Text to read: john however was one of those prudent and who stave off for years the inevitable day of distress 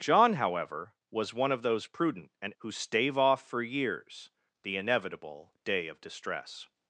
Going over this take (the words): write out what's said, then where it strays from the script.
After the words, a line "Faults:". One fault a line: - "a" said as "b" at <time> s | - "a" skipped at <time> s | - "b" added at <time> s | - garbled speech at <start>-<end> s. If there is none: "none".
john however was one of those prudent and who stave off for years the inevitable day of distress
Faults:
none